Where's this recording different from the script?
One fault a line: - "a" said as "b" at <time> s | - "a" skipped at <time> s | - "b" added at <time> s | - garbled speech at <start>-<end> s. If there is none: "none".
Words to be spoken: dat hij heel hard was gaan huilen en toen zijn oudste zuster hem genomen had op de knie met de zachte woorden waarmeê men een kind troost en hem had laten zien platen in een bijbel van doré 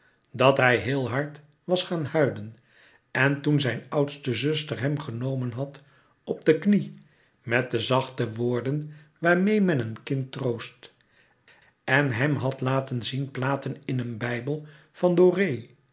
none